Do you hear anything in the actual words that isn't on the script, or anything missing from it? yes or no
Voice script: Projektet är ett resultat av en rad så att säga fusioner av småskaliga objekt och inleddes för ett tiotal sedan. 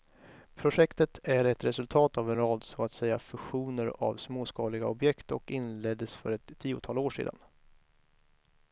yes